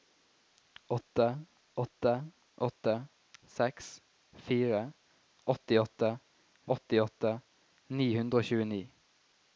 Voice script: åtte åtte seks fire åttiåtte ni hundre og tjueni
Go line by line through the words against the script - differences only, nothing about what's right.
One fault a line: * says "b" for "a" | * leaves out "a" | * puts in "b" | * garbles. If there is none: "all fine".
* puts in "åtte"
* puts in "åttiåtte"